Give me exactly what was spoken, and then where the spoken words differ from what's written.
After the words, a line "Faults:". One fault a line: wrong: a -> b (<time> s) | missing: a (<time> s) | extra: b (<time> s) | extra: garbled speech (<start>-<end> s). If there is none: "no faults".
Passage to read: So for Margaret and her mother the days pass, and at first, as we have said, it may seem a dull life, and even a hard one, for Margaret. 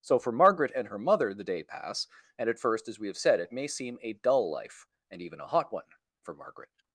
So for Margaret and her mother the day pass, and at first, as we have said, it may seem a dull life, and even a hot one, for Margaret.
Faults:
wrong: days -> day (1.4 s)
wrong: hard -> hot (5.5 s)